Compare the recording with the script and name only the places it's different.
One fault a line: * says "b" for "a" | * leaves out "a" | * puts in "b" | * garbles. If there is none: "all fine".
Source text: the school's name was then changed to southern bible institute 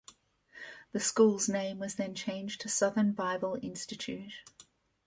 all fine